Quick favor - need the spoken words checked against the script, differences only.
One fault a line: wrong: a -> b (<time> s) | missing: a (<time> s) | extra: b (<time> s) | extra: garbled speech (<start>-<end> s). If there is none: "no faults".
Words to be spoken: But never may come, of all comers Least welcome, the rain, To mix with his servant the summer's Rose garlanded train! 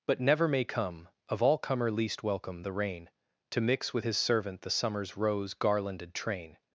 wrong: comers -> comer (1.6 s)